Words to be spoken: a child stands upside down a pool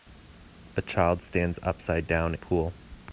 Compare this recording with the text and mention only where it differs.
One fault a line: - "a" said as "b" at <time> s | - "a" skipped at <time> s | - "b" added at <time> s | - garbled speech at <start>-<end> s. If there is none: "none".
none